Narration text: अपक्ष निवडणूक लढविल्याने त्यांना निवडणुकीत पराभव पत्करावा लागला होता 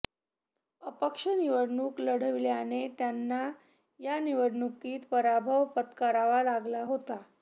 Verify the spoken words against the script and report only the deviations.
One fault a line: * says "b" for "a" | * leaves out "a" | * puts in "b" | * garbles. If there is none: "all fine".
* puts in "या"